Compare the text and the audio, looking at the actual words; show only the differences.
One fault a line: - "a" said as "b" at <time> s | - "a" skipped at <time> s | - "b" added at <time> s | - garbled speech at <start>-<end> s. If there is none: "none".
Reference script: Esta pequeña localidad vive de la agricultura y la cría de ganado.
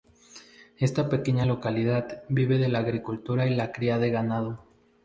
none